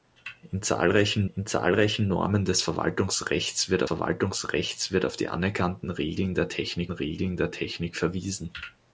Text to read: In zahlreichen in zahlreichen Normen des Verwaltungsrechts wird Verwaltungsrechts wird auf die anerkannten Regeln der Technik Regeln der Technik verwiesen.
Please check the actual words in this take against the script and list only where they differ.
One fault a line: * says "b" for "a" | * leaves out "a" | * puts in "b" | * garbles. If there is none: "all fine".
all fine